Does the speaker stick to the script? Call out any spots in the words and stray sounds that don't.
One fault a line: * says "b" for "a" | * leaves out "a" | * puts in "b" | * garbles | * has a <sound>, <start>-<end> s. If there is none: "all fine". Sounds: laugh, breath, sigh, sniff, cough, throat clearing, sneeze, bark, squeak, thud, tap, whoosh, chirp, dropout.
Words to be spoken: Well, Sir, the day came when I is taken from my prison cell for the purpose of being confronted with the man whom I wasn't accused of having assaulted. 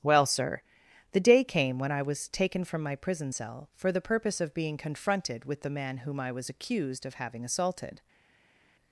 * says "was" for "is"
* says "was" for "wasn't"